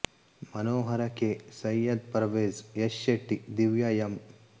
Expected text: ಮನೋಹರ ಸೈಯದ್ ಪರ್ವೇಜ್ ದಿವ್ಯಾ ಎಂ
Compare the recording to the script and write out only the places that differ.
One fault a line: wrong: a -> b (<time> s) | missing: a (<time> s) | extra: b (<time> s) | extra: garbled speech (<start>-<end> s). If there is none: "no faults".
extra: ಕೆ (1.2 s)
extra: ಯಶ್ ಶೆಟ್ಟಿ (2.8 s)